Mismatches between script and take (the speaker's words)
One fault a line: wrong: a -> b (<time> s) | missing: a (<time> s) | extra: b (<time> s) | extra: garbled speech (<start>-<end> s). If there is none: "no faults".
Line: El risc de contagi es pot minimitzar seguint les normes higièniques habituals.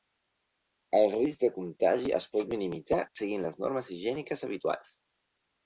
no faults